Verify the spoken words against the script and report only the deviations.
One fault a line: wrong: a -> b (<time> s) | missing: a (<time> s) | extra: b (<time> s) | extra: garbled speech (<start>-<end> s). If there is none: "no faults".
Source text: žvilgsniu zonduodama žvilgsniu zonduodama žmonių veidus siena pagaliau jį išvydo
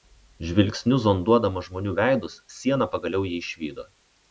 missing: žvilgsniu zonduodama (1.6 s)